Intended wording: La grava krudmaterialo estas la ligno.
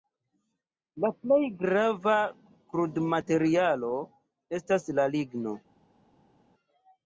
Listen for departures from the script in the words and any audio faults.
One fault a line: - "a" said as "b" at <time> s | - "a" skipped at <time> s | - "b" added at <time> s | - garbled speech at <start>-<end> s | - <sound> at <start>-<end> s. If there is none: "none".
- "plej" added at 1.2 s